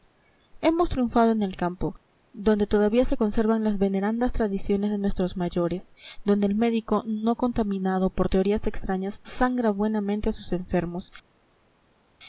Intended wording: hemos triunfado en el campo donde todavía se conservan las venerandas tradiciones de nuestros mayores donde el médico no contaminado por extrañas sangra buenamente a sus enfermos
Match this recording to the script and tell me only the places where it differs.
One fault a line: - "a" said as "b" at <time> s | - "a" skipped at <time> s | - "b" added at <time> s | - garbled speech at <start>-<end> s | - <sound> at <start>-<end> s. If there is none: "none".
- "teorías" added at 8.3 s